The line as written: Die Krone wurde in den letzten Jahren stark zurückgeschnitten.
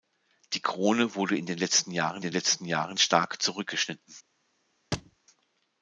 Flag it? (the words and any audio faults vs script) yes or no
yes